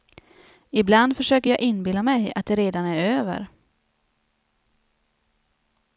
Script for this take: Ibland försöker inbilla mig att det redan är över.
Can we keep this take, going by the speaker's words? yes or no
no